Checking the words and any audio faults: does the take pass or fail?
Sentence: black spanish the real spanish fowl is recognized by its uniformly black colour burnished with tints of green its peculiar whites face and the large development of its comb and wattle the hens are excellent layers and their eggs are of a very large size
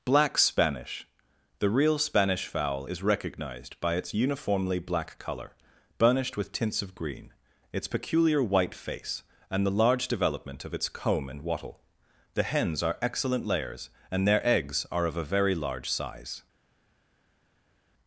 fail